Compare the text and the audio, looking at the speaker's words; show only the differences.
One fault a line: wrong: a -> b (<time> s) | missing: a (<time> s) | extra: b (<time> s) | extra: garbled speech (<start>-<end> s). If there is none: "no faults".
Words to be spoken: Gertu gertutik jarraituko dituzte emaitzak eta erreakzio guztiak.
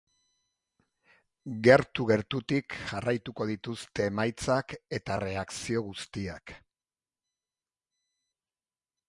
no faults